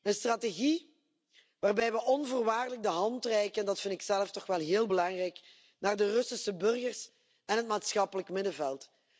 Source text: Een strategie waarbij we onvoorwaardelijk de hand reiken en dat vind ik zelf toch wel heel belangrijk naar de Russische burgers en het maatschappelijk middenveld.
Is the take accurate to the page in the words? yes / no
yes